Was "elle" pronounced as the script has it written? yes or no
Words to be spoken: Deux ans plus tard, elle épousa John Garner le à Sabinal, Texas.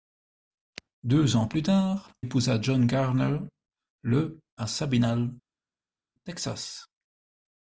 no